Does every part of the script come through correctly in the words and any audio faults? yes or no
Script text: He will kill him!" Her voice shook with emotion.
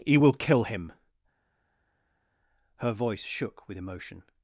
yes